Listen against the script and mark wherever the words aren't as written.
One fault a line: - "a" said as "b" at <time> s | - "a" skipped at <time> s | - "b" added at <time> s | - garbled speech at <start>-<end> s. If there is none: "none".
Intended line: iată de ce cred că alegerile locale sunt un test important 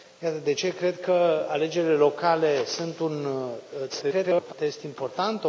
- garbled speech at 3.9-4.5 s